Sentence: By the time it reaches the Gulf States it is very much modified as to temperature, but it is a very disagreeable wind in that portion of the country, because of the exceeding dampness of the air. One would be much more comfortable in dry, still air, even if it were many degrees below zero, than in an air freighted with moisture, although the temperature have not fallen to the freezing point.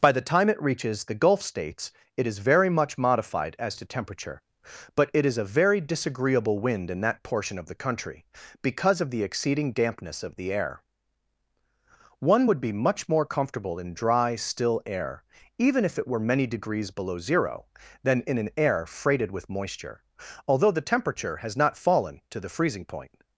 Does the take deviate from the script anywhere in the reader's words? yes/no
yes